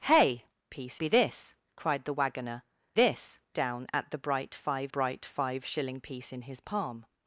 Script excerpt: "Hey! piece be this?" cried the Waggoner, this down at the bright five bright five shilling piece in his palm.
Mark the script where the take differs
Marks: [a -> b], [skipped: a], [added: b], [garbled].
"Hey! piece be this?" cried the Waggoner, this down at the bright five bright five shilling piece in his palm.